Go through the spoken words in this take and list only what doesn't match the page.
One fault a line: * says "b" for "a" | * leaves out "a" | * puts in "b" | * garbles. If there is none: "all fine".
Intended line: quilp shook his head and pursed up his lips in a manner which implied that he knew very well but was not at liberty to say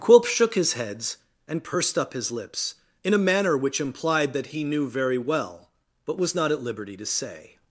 * says "heads" for "head"